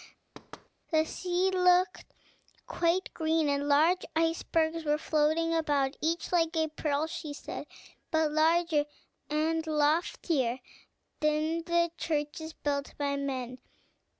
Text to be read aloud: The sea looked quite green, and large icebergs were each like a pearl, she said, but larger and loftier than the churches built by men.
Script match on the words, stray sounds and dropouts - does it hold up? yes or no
no